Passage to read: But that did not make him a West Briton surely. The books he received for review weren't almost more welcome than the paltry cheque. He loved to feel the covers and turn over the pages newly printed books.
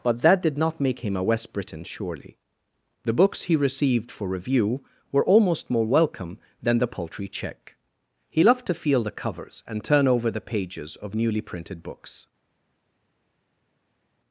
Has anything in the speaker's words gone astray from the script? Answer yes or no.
yes